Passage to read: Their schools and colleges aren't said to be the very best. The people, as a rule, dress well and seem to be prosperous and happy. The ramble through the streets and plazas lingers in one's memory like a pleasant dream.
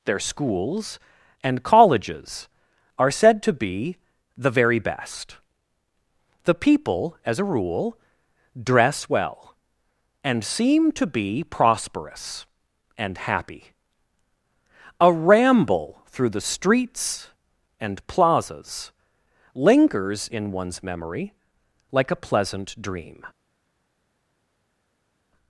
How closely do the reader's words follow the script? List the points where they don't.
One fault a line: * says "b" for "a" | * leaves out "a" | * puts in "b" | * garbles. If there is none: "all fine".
* says "are" for "aren't"
* says "A" for "The"